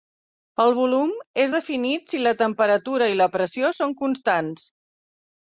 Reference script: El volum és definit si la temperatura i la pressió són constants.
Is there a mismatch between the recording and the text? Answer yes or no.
no